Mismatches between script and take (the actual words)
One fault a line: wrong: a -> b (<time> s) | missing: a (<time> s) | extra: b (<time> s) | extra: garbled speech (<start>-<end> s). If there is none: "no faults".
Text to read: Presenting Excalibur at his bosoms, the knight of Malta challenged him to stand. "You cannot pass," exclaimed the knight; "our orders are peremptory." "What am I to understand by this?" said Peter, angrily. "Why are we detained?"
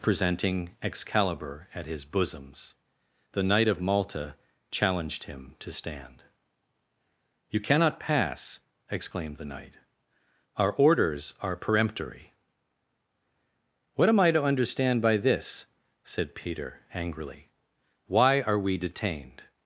no faults